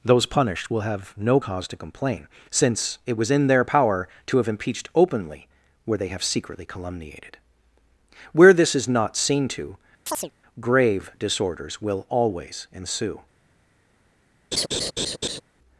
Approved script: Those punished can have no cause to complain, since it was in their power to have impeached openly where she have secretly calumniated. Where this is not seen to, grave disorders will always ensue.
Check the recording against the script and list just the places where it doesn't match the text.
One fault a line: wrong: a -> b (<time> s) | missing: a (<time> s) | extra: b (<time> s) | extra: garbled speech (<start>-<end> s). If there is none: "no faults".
wrong: can -> will (0.7 s)
wrong: she -> they (6.0 s)